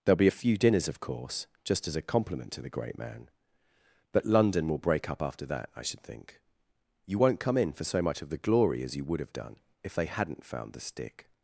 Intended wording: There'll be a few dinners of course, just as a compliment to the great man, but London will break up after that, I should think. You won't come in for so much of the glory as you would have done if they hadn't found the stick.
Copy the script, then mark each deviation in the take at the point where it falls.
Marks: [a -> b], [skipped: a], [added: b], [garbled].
There'll be a few dinners of course, just as a compliment to the great man, but London will break up after that, I should think. You won't come in for so much of the glory as you would have done if they hadn't found the stick.